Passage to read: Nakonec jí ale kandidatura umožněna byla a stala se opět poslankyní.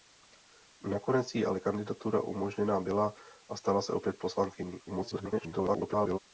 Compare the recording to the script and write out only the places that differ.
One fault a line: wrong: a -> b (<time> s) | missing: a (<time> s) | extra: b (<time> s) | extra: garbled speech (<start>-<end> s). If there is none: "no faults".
extra: garbled speech (4.9-6.2 s)